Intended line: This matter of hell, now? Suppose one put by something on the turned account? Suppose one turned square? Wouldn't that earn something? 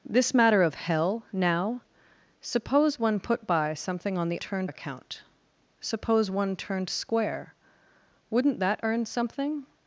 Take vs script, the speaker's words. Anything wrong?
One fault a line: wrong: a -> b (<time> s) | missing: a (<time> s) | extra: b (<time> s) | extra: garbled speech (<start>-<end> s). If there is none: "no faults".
no faults